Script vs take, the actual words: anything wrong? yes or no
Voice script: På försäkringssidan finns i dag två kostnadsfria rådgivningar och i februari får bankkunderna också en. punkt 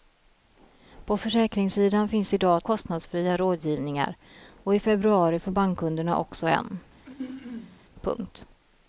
yes